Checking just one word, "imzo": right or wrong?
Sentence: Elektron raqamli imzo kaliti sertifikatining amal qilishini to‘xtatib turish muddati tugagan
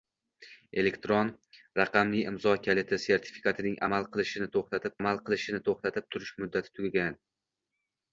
right